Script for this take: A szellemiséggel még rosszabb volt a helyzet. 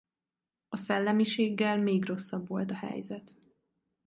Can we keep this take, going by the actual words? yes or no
yes